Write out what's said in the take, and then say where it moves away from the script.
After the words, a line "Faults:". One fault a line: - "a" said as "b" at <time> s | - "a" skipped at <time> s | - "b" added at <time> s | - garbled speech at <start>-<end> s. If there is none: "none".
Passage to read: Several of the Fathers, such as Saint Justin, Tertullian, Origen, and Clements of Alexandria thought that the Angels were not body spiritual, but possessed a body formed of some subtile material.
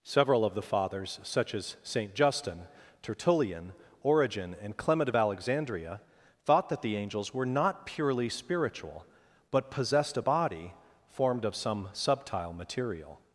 Several of the Fathers, such as Saint Justin, Tertullian, Origen, and Clement of Alexandria thought that the Angels were not purely spiritual, but possessed a body formed of some subtile material.
Faults:
- "Clements" said as "Clement" at 4.8 s
- "body" said as "purely" at 7.8 s